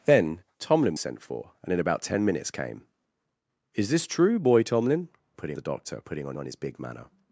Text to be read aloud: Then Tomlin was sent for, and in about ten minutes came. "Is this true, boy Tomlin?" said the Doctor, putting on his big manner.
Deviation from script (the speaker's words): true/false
true